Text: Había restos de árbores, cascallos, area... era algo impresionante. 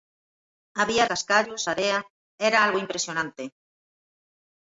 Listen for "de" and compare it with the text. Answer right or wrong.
wrong